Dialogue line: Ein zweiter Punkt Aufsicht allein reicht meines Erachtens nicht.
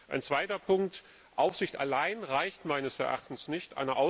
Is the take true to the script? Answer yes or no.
yes